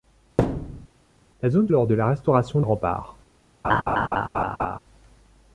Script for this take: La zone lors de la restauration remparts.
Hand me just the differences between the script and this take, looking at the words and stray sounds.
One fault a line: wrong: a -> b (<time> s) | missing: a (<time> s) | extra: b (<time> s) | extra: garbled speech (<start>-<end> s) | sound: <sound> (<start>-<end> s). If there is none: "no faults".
sound: thud (0.4-0.9 s)
sound: laugh (3.6-4.8 s)